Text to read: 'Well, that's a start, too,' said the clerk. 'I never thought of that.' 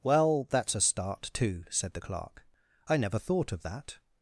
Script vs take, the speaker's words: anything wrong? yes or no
no